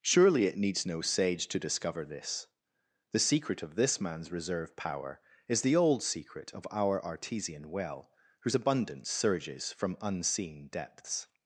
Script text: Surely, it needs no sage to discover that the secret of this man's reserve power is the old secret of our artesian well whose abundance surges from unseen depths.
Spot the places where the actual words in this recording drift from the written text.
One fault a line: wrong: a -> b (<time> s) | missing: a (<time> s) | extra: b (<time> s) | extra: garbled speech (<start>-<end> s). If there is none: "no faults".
wrong: that -> this (2.0 s)